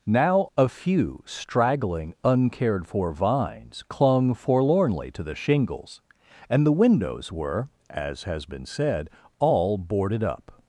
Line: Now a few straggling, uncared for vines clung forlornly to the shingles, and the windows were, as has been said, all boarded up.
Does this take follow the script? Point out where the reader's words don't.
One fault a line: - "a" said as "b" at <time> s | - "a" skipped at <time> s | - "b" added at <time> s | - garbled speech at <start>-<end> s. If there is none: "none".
none